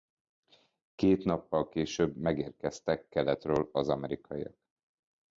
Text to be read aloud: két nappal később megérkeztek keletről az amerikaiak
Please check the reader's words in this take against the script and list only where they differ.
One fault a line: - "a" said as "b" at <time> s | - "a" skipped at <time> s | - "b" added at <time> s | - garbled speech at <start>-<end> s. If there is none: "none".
none